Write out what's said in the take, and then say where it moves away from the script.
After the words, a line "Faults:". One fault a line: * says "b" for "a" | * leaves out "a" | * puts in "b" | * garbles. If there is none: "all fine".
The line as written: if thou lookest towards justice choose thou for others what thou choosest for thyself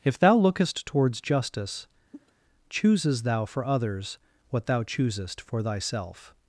if thou lookest towards justice chooses thou for others what thou choosest for thyself
Faults:
* says "chooses" for "choose"